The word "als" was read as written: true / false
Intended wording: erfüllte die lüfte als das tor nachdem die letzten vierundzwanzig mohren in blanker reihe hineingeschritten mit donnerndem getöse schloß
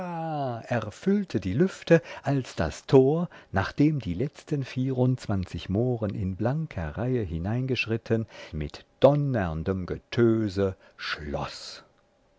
true